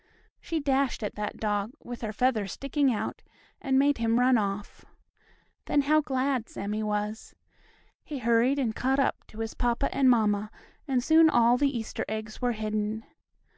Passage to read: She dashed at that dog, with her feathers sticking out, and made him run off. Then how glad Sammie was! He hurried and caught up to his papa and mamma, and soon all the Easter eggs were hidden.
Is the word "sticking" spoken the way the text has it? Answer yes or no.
yes